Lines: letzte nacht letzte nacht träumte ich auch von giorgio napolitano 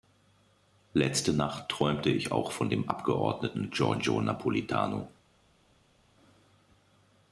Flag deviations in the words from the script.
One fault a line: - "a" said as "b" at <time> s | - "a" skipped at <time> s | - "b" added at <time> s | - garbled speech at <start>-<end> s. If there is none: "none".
- "letzte nacht" skipped at 1.7 s
- "dem abgeordneten" added at 2.7 s